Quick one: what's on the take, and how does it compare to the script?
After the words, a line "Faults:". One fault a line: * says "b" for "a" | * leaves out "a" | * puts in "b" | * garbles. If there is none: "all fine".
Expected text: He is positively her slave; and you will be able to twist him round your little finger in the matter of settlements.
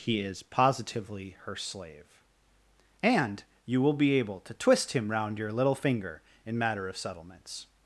He is positively her slave; and you will be able to twist him round your little finger in matter of settlements.
Faults:
* leaves out "the"